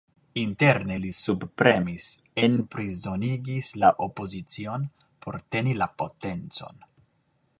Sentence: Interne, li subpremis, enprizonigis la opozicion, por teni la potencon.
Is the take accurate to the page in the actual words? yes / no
yes